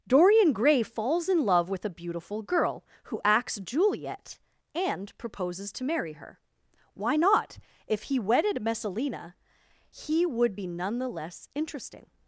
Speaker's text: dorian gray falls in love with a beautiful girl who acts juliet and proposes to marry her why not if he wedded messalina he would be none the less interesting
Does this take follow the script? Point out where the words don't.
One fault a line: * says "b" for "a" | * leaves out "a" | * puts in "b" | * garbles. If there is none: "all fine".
all fine